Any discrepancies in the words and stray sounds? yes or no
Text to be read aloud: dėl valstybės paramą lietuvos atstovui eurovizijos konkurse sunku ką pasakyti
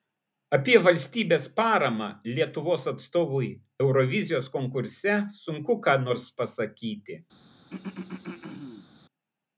yes